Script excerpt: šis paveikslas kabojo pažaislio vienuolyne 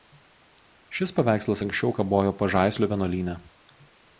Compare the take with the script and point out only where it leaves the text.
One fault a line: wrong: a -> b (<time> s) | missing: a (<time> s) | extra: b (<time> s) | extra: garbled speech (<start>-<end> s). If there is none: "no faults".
extra: anksčiau (1.7 s)